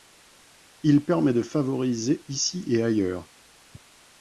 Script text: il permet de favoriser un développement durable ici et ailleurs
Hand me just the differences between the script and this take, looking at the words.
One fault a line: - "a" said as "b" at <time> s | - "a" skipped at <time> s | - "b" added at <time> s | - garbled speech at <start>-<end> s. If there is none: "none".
- "un développement durable" skipped at 2.2 s